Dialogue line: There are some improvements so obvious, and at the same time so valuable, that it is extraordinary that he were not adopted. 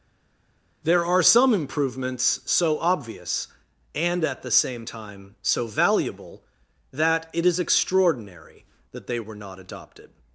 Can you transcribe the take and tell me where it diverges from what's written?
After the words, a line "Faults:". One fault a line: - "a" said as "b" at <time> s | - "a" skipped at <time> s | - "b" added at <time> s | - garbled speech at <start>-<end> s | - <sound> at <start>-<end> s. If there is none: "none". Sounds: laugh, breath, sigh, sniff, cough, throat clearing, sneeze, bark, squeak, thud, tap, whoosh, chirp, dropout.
There are some improvements so obvious, and at the same time so valuable, that it is extraordinary that they were not adopted.
Faults:
- "he" said as "they" at 9.1 s